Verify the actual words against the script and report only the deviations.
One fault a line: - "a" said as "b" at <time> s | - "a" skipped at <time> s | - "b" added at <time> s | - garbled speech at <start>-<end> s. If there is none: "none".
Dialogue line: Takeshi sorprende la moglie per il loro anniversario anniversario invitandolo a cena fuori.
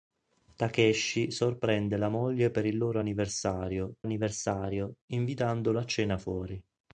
none